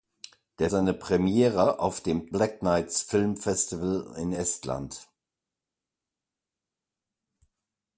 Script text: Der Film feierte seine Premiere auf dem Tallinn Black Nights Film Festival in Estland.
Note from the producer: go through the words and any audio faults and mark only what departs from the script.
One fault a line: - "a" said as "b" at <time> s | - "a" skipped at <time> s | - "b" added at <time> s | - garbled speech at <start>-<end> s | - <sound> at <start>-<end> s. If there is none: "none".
- "Film feierte" skipped at 0.7 s
- "Tallinn" skipped at 2.3 s